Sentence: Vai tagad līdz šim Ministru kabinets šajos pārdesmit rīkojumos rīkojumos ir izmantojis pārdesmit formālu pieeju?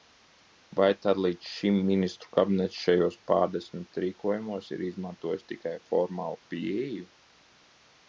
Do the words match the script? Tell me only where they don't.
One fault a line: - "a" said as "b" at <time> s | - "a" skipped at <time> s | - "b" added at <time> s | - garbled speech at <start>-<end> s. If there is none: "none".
- "tagad" said as "tad" at 1.1 s
- "rīkojumos" skipped at 4.7 s
- "pārdesmit" said as "tikai" at 5.5 s